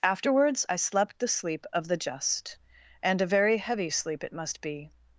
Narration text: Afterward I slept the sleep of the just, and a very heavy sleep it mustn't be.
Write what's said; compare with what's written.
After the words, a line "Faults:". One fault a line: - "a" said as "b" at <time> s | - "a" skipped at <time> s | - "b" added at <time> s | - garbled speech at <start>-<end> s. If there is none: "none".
Afterwards I slept the sleep of the just, and a very heavy sleep it must be.
Faults:
- "Afterward" said as "Afterwards" at 0.0 s
- "mustn't" said as "must" at 4.3 s